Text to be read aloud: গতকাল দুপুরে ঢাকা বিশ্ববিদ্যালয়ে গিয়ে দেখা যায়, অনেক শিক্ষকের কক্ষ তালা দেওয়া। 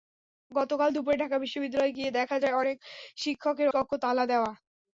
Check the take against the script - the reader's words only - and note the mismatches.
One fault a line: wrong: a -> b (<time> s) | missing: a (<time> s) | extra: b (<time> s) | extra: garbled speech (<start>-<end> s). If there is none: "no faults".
no faults